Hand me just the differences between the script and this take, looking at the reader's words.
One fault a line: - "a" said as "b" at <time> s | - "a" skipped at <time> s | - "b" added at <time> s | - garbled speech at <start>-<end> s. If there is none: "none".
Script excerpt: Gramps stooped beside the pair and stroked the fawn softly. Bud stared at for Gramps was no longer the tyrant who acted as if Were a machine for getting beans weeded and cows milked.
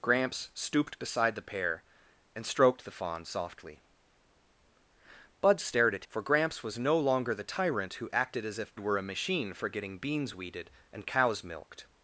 none